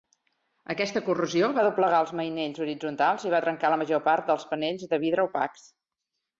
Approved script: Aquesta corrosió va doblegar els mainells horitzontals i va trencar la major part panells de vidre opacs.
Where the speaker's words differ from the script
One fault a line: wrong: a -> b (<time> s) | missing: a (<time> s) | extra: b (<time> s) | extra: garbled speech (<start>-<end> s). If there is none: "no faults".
extra: dels (4.3 s)